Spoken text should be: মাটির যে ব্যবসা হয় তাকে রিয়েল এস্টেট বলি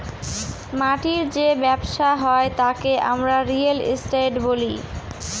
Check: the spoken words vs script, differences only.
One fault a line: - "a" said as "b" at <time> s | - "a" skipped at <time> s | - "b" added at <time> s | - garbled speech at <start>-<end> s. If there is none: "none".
- "আমরা" added at 3.1 s